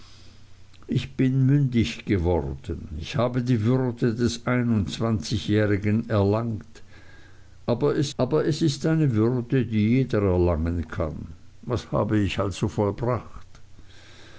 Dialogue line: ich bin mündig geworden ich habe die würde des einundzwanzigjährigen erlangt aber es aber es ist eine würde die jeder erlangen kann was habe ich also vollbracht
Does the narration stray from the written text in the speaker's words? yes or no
no